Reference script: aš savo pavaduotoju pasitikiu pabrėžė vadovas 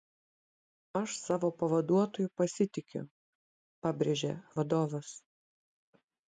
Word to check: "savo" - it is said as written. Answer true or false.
true